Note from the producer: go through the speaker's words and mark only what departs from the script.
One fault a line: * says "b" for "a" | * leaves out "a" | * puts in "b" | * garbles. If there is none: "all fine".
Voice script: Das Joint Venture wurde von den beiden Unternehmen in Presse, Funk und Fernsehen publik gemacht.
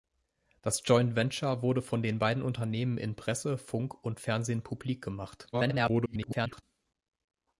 * garbles